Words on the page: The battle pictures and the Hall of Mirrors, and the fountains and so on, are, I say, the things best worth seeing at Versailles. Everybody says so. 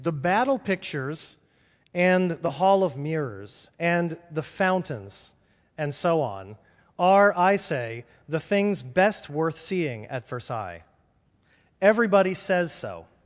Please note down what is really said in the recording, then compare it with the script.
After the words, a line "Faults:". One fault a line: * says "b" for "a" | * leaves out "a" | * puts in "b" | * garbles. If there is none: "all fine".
The battle pictures and the Hall of Mirrors, and the fountains and so on, are, I say, the things best worth seeing at Versailles. Everybody says so.
Faults:
all fine